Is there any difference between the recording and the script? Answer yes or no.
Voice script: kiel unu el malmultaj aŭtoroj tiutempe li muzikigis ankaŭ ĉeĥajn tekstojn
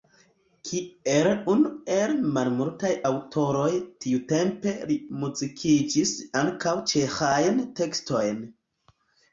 no